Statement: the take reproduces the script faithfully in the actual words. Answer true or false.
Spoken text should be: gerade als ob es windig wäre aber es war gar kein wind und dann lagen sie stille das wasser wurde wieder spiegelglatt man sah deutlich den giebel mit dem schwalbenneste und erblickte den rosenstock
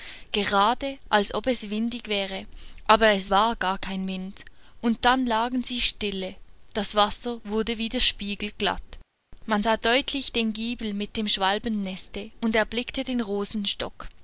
true